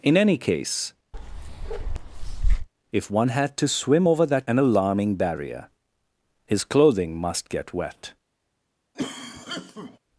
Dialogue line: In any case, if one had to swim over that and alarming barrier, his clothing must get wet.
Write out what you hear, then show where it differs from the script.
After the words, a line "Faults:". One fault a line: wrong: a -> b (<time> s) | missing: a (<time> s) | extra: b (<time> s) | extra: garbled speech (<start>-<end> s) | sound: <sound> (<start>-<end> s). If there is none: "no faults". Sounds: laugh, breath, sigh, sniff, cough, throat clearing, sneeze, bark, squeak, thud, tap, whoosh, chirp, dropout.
In any case, if one had to swim over that and alarming barrier, his clothing must get wet.
Faults:
sound: bark (1.1-2.7 s)
sound: cough (8.9-10.0 s)